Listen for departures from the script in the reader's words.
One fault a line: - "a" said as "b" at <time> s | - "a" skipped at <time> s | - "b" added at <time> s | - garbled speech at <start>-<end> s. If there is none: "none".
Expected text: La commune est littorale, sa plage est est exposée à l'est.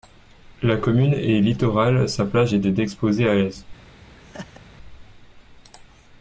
none